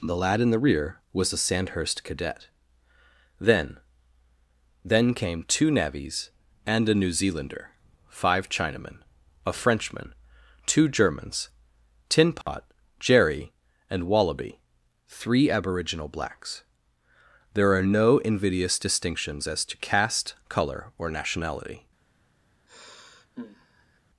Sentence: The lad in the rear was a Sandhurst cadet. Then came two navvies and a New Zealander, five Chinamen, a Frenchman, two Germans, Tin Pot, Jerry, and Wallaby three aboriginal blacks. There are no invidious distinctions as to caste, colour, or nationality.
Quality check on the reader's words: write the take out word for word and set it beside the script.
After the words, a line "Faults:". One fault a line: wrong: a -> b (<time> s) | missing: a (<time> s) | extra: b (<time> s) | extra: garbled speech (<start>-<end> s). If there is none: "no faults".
The lad in the rear was a Sandhurst cadet. Then Then came two navvies and a New Zealander, five Chinamen, a Frenchman, two Germans, Tin Pot, Jerry, and Wallaby three aboriginal blacks. There are no invidious distinctions as to caste, colour, or nationality.
Faults:
extra: Then (4.8 s)